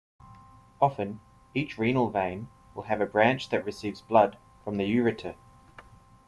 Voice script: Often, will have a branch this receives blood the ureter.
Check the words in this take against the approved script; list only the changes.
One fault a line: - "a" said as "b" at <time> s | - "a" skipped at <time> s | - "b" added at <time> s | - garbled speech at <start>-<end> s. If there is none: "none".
- "each renal vein" added at 1.5 s
- "this" said as "that" at 3.5 s
- "from" added at 4.6 s